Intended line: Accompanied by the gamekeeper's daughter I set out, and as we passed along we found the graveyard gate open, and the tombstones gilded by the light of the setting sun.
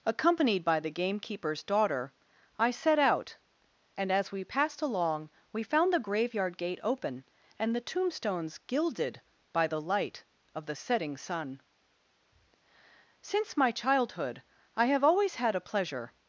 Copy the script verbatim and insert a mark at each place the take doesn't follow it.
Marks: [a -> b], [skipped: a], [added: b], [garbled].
Accompanied by the gamekeeper's daughter I set out, and as we passed along we found the graveyard gate open, and the tombstones gilded by the light of the setting sun. [added: Since my childhood I have always had a pleasure]